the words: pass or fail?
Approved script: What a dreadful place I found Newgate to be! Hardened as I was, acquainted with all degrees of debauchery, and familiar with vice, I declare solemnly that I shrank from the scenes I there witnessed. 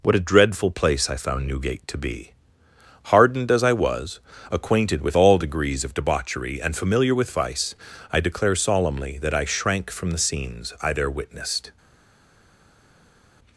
pass